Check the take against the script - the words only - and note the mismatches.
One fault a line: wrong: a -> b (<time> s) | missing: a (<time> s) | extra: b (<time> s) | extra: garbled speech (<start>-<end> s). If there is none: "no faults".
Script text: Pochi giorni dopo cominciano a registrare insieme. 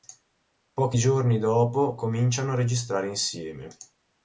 no faults